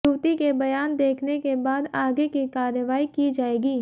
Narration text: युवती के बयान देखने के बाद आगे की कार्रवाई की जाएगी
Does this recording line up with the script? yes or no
yes